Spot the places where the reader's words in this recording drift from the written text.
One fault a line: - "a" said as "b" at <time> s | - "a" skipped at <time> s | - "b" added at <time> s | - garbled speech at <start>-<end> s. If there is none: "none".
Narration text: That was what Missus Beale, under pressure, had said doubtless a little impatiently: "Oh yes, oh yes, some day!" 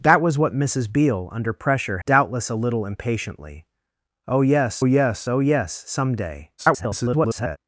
- "had said" skipped at 2.0 s
- "yes" added at 4.8 s
- garbled speech at 6.6-7.6 s